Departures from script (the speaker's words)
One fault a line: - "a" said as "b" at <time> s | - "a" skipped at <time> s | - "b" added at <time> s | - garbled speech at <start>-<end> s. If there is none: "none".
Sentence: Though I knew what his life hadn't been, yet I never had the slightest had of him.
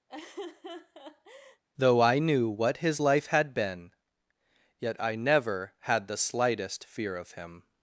- "hadn't" said as "had" at 3.3 s
- "had" said as "fear" at 6.8 s